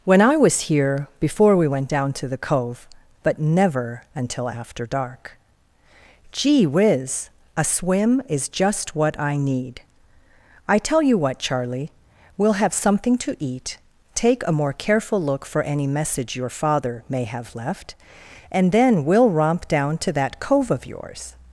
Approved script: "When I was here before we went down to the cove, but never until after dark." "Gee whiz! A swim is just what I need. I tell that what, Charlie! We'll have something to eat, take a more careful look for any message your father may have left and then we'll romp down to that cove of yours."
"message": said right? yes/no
yes